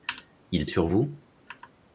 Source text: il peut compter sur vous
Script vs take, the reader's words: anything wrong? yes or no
yes